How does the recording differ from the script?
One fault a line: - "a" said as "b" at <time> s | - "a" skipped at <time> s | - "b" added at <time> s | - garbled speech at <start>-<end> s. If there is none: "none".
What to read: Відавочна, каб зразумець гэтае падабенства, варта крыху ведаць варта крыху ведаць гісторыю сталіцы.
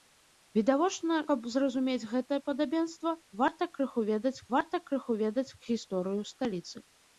none